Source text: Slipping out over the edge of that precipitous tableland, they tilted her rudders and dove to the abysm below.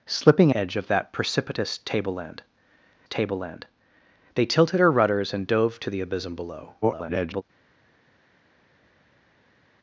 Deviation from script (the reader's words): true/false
true